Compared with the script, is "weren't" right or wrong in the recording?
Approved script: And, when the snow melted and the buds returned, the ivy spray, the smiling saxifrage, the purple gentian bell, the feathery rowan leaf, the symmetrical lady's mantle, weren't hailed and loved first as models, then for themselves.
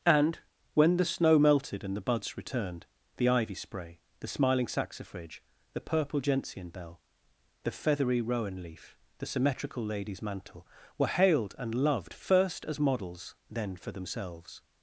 wrong